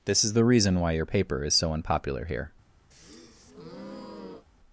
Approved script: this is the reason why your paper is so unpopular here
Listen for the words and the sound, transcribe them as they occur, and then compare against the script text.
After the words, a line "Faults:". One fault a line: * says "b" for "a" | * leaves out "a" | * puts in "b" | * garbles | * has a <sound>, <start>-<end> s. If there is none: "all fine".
this is the reason why your paper is so unpopular here
Faults:
* has a breath, 2.9-4.5 s